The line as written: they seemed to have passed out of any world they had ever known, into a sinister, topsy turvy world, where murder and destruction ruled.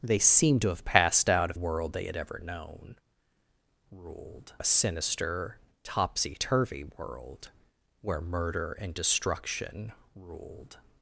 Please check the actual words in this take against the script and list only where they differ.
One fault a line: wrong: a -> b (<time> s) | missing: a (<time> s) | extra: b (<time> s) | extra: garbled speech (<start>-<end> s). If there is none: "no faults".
missing: any (1.6 s)
wrong: into -> ruled (3.9 s)